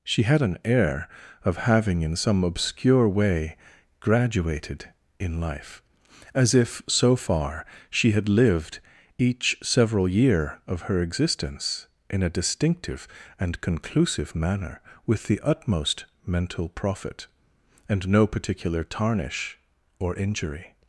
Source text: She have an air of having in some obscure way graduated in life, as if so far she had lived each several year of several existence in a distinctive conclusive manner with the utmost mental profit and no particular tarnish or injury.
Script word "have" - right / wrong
wrong